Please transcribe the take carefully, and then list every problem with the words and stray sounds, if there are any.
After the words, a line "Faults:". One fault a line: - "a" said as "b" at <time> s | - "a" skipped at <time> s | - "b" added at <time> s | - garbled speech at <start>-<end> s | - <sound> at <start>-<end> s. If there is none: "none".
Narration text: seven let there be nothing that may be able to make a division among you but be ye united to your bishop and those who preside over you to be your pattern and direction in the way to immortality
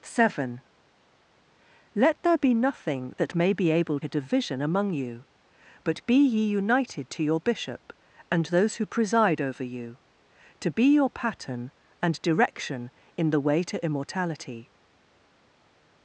seven let there be nothing that may be able a division among you but be ye united to your bishop and those who preside over you to be your pattern and direction in the way to immortality
Faults:
- "to make" skipped at 4.0 s